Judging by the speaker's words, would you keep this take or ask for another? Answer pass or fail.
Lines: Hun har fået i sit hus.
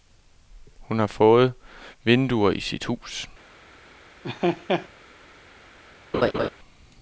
fail